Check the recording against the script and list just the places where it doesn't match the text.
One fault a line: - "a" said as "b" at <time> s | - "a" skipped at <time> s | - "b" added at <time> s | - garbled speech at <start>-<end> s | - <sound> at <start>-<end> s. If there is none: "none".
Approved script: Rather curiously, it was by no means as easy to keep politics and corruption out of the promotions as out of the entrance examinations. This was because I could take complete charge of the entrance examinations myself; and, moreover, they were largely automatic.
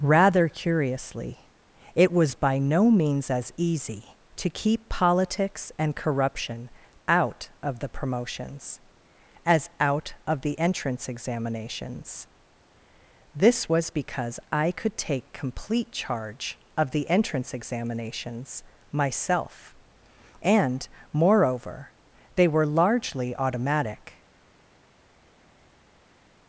none